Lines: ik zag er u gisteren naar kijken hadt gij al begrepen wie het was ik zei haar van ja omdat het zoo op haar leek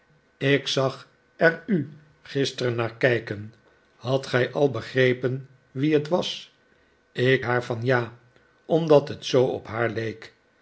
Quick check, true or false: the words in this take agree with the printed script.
false